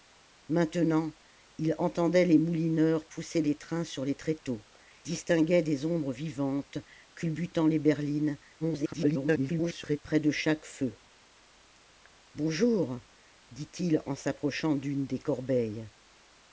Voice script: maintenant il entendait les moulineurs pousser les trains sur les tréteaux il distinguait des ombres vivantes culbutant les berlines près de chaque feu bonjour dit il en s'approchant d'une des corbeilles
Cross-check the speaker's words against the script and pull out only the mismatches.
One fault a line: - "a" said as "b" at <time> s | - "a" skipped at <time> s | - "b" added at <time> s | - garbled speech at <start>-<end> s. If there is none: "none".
- "il" skipped at 4.7 s
- garbled speech at 8.6-10.0 s